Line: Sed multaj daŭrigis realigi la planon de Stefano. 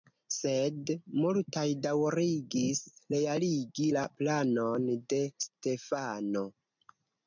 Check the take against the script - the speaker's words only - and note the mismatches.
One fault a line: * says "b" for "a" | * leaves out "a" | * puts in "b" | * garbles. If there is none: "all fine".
all fine